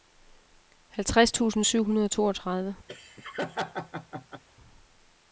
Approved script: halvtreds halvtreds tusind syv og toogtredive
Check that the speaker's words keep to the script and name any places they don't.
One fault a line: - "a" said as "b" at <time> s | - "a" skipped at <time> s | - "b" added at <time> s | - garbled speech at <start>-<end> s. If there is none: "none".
- "halvtreds" skipped at 1.3 s
- "hundrede" added at 1.8 s